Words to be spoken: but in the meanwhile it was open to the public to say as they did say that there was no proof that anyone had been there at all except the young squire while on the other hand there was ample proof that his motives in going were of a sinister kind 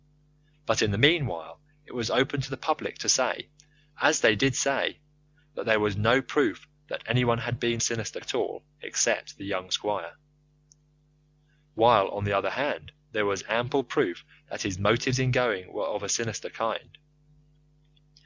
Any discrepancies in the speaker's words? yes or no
yes